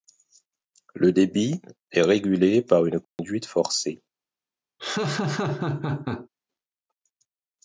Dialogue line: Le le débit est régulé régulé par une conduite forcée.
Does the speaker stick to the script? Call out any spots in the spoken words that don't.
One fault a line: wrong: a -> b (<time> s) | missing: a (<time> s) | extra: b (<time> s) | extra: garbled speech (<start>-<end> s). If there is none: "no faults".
missing: le (1.1 s)
missing: régulé (2.6 s)